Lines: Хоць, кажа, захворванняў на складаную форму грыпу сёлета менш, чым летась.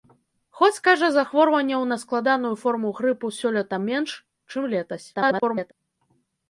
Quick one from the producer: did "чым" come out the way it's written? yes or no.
yes